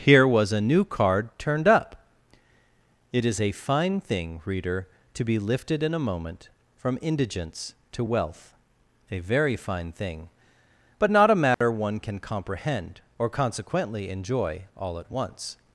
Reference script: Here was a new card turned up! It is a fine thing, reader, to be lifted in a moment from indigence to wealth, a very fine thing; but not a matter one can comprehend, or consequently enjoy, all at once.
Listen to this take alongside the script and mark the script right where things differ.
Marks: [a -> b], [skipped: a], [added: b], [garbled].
Here was a new card turned up! It is a fine thing, reader, to be lifted in a moment from indigence to wealth, a very fine thing; but not a matter one can comprehend, or consequently enjoy, all at once.